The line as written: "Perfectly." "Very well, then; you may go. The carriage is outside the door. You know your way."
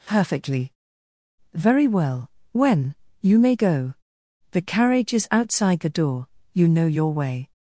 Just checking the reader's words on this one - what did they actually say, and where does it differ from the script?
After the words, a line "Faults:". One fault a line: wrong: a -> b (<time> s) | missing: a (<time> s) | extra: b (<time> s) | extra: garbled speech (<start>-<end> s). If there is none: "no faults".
"Perfectly." "Very well, when; you may go. The carriage is outside the door. You know your way."
Faults:
wrong: then -> when (2.5 s)